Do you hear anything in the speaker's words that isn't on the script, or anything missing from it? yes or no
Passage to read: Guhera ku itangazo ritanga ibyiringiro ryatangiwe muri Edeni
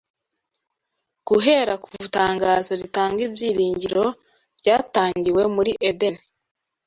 no